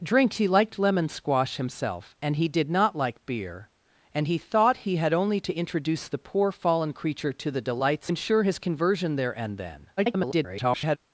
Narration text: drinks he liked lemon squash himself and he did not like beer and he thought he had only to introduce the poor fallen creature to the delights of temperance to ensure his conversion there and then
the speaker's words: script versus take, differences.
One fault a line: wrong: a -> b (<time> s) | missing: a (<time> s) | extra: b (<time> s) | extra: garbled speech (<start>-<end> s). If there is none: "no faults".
missing: of temperance to (8.1 s)
extra: garbled speech (10.0-11.0 s)